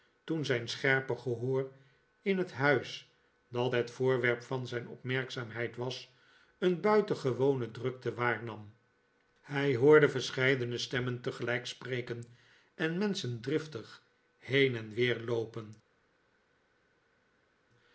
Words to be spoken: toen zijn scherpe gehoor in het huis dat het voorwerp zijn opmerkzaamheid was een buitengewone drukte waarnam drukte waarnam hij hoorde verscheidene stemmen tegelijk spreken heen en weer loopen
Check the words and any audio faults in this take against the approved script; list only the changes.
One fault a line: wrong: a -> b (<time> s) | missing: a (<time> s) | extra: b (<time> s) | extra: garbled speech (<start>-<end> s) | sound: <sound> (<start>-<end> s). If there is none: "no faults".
extra: van (4.4 s)
missing: drukte waarnam (8.7 s)
extra: en menschen driftig (12.7 s)